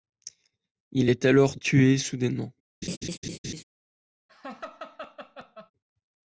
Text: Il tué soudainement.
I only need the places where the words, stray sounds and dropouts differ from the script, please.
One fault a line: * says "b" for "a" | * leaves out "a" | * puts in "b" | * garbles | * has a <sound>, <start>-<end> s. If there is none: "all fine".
* puts in "est alors"
* has a laugh, 2.8-3.6 s
* has a laugh, 4.3-5.7 s